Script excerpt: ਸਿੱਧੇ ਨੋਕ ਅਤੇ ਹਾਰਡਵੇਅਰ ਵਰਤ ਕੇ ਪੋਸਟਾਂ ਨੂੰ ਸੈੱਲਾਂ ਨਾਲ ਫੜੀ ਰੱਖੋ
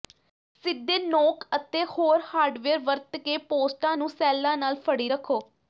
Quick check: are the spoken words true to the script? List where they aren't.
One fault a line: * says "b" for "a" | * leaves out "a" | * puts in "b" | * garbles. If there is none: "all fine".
* puts in "ਹੋਰ"